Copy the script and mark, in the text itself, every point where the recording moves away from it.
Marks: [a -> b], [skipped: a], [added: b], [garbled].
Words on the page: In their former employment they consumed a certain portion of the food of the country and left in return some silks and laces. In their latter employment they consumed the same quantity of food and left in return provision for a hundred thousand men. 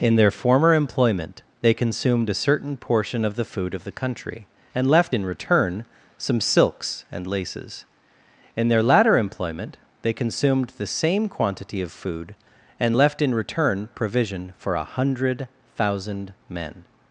In their former employment they consumed a certain portion of the food of the country and left in return some silks and laces. In their latter employment they consumed the same quantity of food and left in return provision for a hundred thousand men.